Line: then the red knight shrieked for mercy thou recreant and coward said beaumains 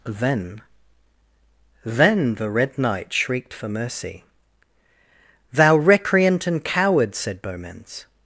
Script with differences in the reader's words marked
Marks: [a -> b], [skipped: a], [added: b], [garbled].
then [added: then] the red knight shrieked for mercy thou recreant and coward said beaumains